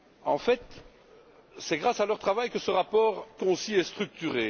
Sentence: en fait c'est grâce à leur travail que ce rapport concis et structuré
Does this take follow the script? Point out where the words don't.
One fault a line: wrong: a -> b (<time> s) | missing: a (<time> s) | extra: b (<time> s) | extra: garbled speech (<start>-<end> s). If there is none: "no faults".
no faults